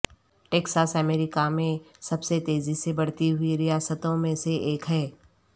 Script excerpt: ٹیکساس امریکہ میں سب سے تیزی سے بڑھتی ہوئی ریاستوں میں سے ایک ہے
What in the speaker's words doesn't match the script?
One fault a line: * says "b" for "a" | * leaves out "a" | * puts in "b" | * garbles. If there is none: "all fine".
all fine